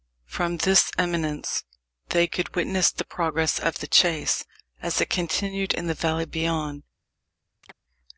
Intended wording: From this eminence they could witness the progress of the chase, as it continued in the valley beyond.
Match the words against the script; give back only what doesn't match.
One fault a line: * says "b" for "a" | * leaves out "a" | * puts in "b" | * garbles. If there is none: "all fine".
all fine